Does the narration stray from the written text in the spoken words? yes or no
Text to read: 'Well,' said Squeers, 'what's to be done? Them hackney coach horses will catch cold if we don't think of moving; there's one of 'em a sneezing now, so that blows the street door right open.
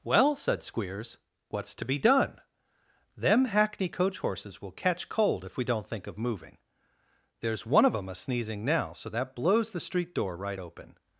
no